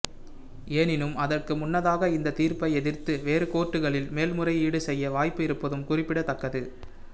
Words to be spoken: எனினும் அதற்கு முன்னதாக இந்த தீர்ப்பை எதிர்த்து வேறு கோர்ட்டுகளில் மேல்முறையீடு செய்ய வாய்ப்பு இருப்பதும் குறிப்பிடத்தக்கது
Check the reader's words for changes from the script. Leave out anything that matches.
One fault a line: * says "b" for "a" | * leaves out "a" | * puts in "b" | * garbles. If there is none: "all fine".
all fine